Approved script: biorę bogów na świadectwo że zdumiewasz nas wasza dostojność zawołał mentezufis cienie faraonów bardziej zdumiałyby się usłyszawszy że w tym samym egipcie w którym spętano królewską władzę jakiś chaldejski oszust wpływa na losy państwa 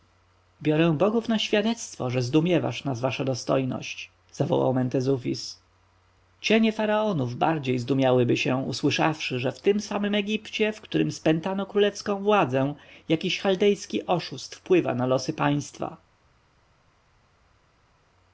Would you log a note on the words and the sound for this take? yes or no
no